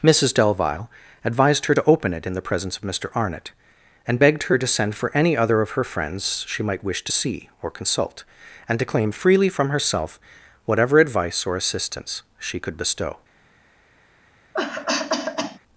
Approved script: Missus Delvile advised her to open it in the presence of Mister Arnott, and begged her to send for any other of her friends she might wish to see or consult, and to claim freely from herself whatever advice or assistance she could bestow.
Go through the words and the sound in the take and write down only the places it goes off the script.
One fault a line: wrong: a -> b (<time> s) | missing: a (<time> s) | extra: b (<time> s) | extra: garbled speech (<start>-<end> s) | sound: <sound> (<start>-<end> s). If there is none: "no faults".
sound: cough (14.5-15.6 s)